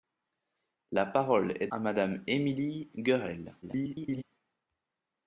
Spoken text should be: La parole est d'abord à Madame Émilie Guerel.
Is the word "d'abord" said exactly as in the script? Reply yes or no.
no